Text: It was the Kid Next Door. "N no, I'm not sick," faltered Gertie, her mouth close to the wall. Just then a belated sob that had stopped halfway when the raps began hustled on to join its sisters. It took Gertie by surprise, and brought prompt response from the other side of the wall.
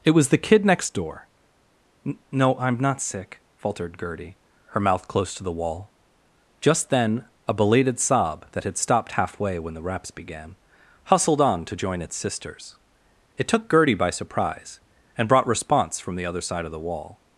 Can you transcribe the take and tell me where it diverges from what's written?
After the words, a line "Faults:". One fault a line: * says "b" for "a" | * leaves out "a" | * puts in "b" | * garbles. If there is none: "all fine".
It was the Kid Next Door. "N no, I'm not sick," faltered Gertie, her mouth close to the wall. Just then a belated sob that had stopped halfway when the raps began hustled on to join its sisters. It took Gertie by surprise, and brought response from the other side of the wall.
Faults:
* leaves out "prompt"